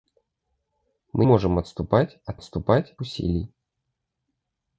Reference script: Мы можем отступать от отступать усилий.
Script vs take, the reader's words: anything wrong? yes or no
no